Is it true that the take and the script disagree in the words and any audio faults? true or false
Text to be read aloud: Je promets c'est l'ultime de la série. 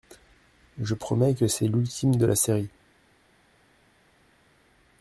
true